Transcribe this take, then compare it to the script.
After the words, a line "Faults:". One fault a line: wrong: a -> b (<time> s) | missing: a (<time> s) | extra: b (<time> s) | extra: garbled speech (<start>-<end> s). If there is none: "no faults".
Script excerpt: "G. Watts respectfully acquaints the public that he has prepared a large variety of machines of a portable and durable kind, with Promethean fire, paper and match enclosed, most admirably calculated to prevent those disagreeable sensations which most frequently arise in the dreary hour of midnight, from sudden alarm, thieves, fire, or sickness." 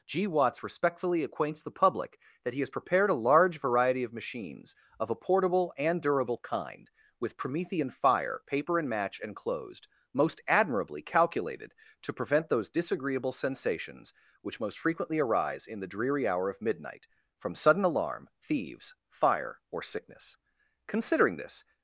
"G. Watts respectfully acquaints the public that he has prepared a large variety of machines of a portable and durable kind, with Promethean fire, paper and match enclosed, most admirably calculated to prevent those disagreeable sensations which most frequently arise in the dreary hour of midnight, from sudden alarm, thieves, fire, or sickness." Considering this
Faults:
extra: Considering this (20.9 s)